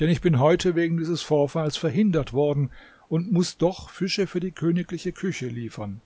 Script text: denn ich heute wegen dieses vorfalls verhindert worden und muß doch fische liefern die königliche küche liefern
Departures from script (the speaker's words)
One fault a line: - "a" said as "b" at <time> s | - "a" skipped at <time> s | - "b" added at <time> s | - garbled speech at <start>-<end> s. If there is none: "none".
- "bin" added at 0.2 s
- "liefern" said as "für" at 4.2 s